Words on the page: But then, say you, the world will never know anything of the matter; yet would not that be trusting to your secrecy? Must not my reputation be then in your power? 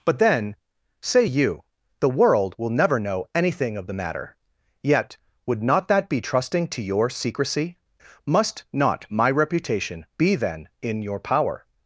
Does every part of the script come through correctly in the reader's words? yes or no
yes